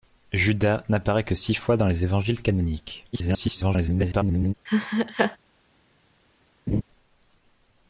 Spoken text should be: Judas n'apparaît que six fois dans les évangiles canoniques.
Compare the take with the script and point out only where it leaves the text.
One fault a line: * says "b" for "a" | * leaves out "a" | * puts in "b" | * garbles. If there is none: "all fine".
* garbles